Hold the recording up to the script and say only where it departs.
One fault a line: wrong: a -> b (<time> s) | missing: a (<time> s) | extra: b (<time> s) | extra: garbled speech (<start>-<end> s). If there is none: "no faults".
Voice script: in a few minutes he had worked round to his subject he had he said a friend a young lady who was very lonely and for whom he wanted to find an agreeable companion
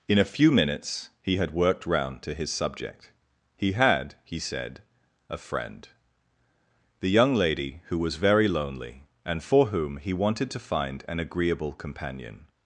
wrong: a -> the (7.0 s)